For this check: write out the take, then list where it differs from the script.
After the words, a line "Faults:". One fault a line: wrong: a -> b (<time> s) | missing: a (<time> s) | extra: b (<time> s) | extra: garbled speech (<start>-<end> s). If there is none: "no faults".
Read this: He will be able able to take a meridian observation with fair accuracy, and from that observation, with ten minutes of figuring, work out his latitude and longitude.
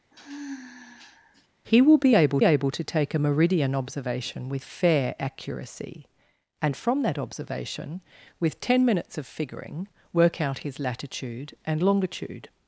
He will be able able to take a meridian observation with fair accuracy, and from that observation, with ten minutes of figuring, work out his latitude and longitude.
Faults:
no faults